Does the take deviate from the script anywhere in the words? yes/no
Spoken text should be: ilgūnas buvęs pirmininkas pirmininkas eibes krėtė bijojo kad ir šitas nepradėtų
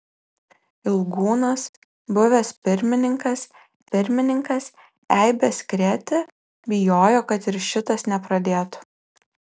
no